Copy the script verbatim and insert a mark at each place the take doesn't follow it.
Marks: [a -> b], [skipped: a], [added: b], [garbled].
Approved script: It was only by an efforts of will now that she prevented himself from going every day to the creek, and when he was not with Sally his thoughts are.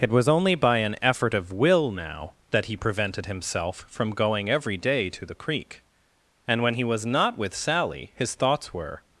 It was only by an [efforts -> effort] of will now that [she -> he] prevented himself from going every day to the creek, and when he was not with Sally his thoughts [are. -> were]